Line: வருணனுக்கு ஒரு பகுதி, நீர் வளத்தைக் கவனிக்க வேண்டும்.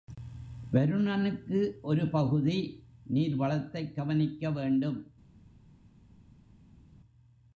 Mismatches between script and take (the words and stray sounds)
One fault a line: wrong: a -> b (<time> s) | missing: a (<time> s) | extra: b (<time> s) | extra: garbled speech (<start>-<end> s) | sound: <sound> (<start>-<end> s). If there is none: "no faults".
no faults